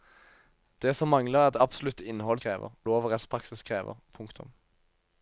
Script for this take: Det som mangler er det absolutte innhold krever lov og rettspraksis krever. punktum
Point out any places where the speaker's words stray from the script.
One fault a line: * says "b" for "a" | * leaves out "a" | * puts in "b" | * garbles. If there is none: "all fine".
all fine